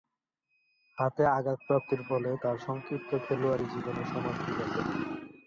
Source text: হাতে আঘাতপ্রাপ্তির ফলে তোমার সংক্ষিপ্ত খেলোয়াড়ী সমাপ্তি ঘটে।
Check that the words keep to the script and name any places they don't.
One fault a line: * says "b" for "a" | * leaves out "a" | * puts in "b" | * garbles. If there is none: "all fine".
* says "তার" for "তোমার"
* puts in "জীবনের"